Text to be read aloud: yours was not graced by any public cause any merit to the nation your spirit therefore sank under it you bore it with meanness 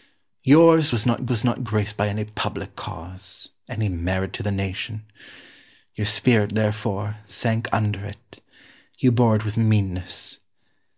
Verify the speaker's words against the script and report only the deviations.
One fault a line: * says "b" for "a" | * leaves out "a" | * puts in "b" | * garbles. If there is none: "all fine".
* puts in "was not"